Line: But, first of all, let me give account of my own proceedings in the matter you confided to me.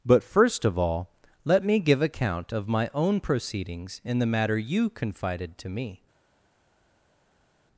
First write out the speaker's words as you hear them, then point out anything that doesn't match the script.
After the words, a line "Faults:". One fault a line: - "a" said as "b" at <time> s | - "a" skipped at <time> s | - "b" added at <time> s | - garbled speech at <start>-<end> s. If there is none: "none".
But, first of all, let me give account of my own proceedings in the matter you confided to me.
Faults:
none